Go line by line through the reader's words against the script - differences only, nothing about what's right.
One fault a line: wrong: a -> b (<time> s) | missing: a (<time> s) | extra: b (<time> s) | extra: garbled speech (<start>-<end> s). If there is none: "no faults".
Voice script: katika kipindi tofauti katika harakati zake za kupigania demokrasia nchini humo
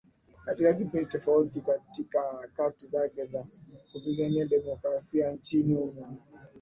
no faults